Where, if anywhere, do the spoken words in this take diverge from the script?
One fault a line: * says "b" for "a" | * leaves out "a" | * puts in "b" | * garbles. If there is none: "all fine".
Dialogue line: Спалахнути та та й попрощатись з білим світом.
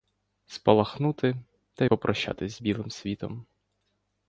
* leaves out "та"